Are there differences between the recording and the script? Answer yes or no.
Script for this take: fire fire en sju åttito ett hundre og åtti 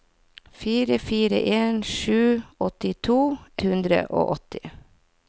yes